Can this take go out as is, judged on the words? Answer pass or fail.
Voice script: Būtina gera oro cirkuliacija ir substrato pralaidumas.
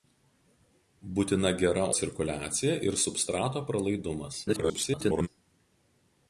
fail